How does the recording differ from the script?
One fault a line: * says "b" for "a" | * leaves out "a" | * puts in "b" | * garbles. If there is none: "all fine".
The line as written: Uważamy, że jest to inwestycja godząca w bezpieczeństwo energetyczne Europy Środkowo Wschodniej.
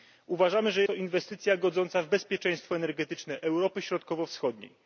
* leaves out "jest"